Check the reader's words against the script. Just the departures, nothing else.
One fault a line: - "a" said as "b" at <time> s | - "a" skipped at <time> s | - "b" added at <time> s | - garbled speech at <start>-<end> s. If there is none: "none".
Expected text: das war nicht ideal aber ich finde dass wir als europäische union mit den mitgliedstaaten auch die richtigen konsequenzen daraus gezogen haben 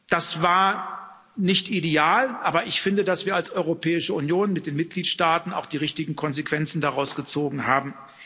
none